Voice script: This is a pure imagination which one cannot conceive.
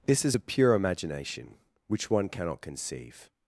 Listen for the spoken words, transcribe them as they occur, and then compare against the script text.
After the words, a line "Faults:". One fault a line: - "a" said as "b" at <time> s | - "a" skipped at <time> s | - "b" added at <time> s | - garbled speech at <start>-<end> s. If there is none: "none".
This is a pure imagination which one cannot conceive.
Faults:
none